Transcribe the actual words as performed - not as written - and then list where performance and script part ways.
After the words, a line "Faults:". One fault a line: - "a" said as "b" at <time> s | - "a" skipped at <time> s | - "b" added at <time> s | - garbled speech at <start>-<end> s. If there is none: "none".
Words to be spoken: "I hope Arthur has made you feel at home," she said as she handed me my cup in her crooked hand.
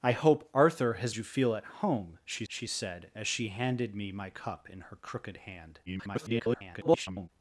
"I hope Arthur has you feel at home," she she said as she handed me my cup in her crooked hand. [garbled]
Faults:
- "made" skipped at 1.1 s
- "she" added at 2.5 s
- garbled speech at 5.9-7.3 s